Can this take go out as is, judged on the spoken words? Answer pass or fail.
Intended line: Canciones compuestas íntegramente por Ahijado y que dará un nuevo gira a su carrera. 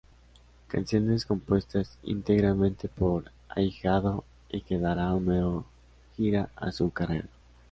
pass